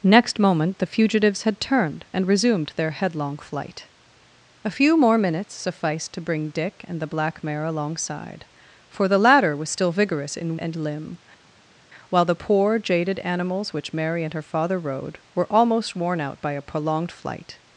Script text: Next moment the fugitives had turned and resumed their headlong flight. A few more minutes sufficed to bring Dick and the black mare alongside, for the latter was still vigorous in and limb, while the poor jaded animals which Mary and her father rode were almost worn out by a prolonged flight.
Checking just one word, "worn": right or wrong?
right